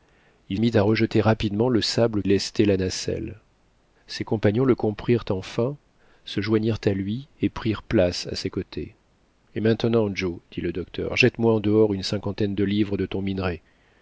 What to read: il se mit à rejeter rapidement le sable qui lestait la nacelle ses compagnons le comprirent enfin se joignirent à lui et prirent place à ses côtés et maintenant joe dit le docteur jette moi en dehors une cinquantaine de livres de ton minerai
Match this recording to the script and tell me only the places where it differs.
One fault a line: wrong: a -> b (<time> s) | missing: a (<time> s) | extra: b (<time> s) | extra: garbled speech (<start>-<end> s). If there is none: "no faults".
missing: se (0.6 s)
missing: qui (2.2 s)